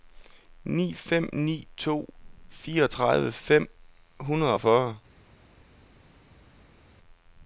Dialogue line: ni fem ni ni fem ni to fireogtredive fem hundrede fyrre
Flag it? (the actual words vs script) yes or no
yes